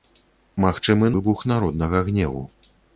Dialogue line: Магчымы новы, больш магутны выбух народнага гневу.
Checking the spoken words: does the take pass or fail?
fail